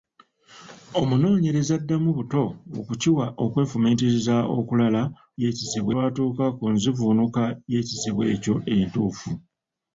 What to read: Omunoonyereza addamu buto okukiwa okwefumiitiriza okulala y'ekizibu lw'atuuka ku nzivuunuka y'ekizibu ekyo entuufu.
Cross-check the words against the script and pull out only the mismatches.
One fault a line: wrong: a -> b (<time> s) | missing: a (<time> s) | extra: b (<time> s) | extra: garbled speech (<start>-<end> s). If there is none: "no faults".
no faults